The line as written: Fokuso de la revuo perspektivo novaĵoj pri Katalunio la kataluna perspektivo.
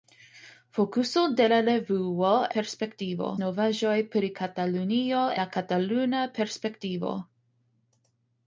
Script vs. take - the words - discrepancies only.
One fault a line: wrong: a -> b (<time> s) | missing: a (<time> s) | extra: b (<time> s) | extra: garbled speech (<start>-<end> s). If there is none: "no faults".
no faults